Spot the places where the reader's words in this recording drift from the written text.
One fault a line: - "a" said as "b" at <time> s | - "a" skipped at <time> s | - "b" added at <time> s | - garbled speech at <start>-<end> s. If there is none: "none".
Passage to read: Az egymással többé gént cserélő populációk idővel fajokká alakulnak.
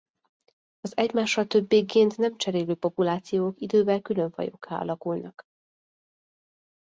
- "nem" added at 2.2 s
- "külön" added at 4.0 s